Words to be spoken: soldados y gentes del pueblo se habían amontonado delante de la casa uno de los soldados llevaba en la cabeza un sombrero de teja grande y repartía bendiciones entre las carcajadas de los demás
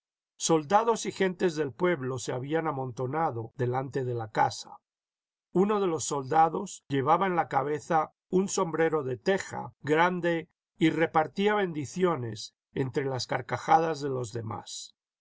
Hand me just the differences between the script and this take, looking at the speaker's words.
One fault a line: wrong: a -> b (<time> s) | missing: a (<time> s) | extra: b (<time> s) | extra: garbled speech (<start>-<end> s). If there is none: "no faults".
no faults